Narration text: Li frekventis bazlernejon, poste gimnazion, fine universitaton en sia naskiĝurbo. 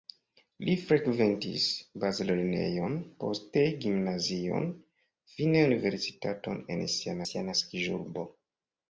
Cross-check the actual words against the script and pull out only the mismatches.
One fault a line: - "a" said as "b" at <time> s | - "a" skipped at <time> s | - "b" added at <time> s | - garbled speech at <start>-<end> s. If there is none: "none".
- "sia" added at 7.3 s